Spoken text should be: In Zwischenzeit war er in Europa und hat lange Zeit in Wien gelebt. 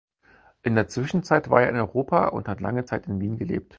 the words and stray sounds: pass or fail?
fail